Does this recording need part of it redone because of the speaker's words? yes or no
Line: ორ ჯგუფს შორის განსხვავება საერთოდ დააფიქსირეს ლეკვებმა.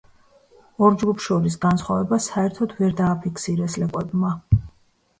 yes